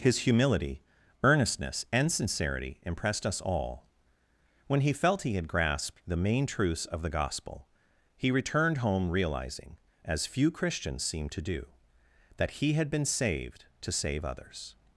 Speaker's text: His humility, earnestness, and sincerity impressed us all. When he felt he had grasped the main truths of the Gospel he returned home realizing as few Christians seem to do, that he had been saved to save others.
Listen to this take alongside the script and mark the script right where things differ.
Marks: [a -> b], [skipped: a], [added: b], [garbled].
His humility, earnestness, and sincerity impressed us all. When he felt he had grasped the main truths of the Gospel he returned home realizing as few Christians seem to do, that he had been saved to save others.